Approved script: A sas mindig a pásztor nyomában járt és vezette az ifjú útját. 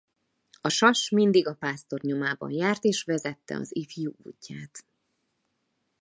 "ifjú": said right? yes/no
yes